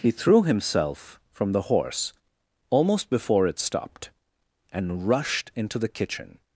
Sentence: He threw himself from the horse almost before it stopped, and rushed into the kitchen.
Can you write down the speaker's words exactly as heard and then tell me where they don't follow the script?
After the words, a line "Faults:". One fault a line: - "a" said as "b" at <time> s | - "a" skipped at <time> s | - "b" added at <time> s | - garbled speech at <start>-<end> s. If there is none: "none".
He threw himself from the horse almost before it stopped, and rushed into the kitchen.
Faults:
none